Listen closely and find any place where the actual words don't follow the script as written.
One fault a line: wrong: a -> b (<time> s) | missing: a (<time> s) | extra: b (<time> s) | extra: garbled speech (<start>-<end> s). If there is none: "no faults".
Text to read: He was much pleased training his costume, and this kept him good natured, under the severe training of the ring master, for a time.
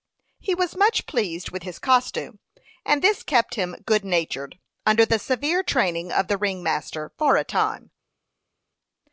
wrong: training -> with (1.5 s)